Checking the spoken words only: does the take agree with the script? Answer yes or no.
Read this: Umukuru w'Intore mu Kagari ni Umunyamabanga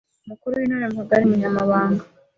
no